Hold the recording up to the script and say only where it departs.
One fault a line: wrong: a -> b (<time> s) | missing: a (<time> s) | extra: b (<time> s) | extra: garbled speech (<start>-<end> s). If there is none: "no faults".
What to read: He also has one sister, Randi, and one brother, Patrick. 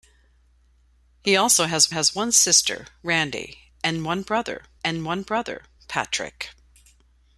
extra: has (1.9 s)
extra: and one brother (4.8 s)